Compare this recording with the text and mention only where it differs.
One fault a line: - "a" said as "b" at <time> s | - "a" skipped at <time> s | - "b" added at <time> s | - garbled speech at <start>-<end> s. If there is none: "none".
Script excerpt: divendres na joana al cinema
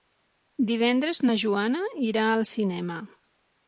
- "irà" added at 2.1 s